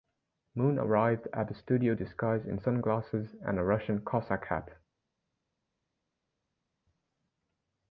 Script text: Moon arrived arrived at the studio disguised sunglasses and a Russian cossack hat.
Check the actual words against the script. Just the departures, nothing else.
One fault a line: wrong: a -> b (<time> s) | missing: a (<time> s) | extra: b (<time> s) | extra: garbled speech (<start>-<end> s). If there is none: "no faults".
missing: arrived (1.3 s)
extra: in (2.5 s)